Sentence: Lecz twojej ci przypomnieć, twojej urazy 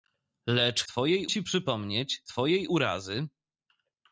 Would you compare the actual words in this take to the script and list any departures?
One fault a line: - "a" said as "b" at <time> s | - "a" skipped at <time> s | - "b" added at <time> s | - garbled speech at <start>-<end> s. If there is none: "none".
none